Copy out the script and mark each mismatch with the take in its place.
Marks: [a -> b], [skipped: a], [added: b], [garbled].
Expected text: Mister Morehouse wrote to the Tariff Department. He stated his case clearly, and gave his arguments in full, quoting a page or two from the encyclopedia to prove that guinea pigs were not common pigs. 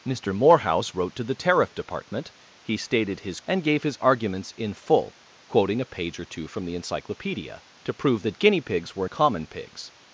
Mister Morehouse wrote to the Tariff Department. He stated his [skipped: case clearly,] and gave his arguments in full, quoting a page or two from the encyclopedia to prove that guinea pigs were [skipped: not] common pigs.